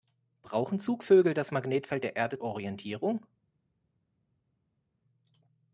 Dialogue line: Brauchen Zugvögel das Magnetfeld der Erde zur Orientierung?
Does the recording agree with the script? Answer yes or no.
no